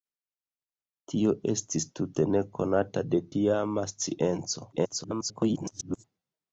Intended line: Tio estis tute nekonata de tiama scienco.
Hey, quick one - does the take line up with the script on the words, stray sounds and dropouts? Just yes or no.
no